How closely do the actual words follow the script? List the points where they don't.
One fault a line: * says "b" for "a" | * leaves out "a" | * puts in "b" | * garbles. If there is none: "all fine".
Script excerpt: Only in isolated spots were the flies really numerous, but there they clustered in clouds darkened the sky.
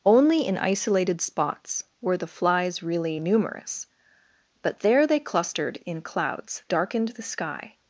all fine